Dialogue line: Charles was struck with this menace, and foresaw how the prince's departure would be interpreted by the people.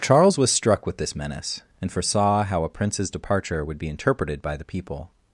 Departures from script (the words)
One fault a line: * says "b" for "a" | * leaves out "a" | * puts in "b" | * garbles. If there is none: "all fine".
* says "a" for "the"